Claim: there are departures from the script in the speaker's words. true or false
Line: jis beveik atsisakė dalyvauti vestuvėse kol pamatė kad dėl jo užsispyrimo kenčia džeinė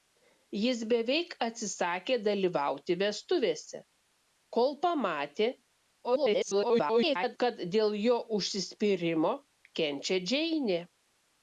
true